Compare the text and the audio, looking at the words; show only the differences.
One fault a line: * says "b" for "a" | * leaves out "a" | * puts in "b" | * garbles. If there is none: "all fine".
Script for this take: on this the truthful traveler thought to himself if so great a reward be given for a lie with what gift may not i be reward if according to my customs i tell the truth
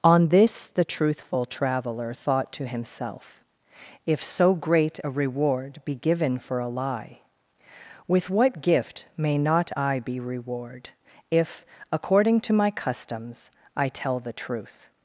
all fine